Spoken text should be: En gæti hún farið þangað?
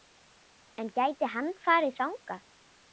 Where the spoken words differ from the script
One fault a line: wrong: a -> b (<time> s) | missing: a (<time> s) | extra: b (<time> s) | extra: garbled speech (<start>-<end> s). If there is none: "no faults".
wrong: hún -> hann (1.4 s)